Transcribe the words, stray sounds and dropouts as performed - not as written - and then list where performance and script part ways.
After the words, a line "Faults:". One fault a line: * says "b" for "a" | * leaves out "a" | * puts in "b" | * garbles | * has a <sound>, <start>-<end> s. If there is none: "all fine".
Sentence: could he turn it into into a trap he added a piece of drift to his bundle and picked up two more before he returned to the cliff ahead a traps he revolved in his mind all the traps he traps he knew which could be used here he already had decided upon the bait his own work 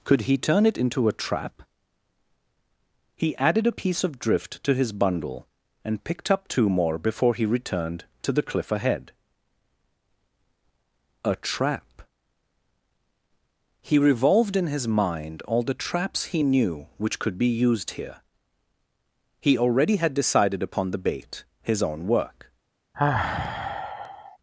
could he turn it into a trap he added a piece of drift to his bundle and picked up two more before he returned to the cliff ahead a trap he revolved in his mind all the traps he knew which could be used here he already had decided upon the bait his own work
Faults:
* leaves out "into"
* says "trap" for "traps"
* leaves out "traps he"
* has a sigh, 22.9-24.4 s